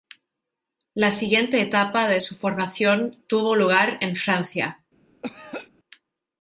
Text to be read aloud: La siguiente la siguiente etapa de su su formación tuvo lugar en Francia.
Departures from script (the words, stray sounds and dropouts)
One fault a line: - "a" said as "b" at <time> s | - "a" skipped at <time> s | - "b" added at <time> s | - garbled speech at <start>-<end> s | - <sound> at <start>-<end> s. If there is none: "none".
- "la siguiente" skipped at 1.6 s
- "su" skipped at 2.4 s
- throat clearing at 5.2-5.7 s